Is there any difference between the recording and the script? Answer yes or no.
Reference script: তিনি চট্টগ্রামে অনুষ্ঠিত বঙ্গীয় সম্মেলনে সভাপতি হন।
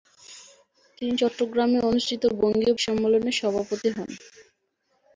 no